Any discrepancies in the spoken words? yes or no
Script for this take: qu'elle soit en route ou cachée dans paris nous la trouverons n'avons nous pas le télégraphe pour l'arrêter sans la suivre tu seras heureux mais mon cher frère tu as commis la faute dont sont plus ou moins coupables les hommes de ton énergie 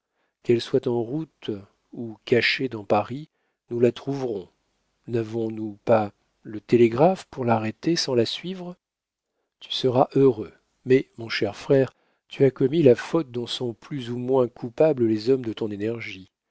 no